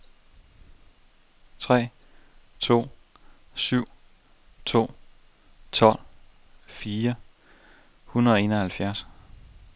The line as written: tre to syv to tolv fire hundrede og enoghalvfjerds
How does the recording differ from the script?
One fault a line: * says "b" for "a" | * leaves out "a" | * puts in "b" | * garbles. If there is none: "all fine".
all fine